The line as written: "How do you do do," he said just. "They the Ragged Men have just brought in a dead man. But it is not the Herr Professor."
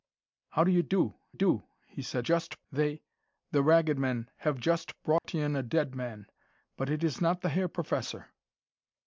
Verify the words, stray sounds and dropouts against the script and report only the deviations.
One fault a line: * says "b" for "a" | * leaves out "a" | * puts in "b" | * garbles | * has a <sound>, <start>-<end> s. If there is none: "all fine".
* has a dropout, 5.2-5.2 s